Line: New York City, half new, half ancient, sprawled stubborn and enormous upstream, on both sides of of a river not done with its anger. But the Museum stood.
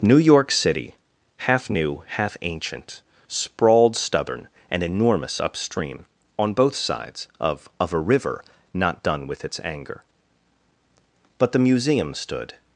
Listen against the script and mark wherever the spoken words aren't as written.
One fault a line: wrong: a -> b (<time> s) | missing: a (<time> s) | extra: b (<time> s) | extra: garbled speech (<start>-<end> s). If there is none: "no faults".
no faults